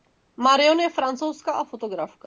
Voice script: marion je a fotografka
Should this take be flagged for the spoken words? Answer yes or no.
yes